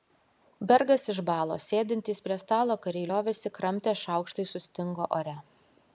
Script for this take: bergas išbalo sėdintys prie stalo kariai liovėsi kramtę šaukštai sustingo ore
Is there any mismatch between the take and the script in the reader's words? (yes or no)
no